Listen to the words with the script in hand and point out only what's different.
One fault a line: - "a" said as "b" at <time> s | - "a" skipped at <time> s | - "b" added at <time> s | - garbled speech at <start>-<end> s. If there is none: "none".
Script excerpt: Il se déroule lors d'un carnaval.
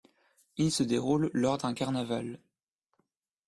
none